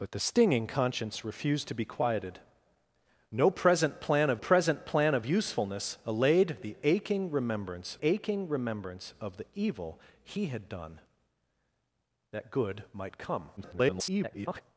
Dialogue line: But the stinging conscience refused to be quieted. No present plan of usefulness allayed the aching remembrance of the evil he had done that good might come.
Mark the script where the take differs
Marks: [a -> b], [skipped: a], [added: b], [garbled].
But the stinging conscience refused to be quieted. No present plan of [added: present plan of] usefulness allayed the aching remembrance [added: aching remembrance] of the evil he had done that good might come. [garbled]